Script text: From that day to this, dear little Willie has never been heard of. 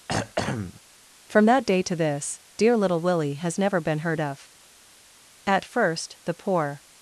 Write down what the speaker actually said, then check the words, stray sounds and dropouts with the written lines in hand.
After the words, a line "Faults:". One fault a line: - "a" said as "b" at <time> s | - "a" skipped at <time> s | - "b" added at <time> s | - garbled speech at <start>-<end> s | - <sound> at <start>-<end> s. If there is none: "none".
From that day to this, dear little Willie has never been heard of. "At first, the poor
Faults:
- throat clearing at 0.1-0.8 s
- "At first the poor" added at 5.5 s